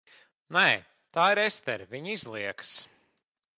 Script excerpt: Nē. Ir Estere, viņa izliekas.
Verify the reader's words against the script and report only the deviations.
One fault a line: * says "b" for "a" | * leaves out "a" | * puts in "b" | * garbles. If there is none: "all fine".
* puts in "Tā"